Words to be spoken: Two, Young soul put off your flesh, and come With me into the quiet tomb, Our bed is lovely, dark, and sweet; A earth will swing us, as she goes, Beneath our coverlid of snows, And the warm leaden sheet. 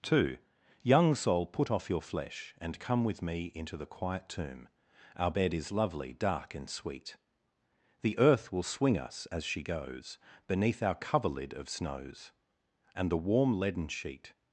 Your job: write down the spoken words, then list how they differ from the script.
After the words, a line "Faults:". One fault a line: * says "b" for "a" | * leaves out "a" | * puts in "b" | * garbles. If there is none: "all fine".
Two, Young soul put off your flesh, and come With me into the quiet tomb, Our bed is lovely, dark, and sweet; The earth will swing us, as she goes, Beneath our coverlid of snows, And the warm leaden sheet.
Faults:
* says "The" for "A"